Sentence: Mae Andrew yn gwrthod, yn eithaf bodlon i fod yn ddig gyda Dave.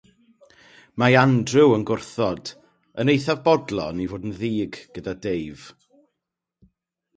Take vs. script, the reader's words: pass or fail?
pass